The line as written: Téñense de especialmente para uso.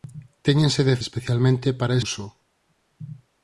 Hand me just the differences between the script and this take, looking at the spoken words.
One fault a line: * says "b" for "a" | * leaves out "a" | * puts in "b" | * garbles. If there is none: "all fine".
all fine